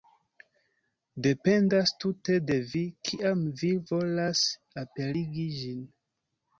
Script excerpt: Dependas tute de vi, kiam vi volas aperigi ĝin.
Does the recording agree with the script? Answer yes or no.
yes